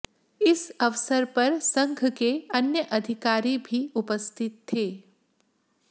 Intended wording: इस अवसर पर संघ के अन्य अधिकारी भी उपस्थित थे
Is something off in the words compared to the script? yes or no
no